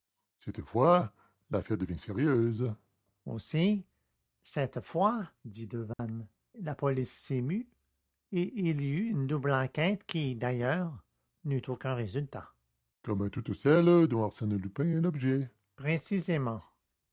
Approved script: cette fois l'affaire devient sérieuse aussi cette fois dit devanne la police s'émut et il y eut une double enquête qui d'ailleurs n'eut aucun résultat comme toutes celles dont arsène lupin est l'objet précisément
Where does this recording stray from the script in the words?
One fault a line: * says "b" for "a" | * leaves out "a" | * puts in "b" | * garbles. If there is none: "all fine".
all fine